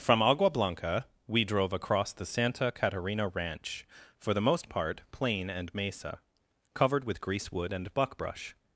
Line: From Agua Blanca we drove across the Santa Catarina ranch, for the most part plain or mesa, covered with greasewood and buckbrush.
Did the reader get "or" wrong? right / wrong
wrong